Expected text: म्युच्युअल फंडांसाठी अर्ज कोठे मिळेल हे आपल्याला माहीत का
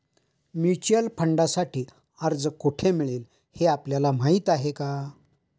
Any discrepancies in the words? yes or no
yes